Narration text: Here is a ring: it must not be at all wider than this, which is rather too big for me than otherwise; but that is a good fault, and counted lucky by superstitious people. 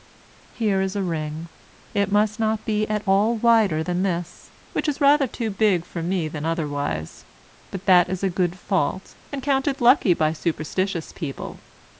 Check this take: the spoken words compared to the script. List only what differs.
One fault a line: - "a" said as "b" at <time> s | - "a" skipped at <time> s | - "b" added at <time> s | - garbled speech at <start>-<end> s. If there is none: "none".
none